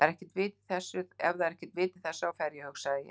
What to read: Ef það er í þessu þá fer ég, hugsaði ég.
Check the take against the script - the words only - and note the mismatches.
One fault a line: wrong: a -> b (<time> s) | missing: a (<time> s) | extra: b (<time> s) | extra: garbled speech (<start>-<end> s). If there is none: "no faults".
extra: ekkert vit (1.6 s)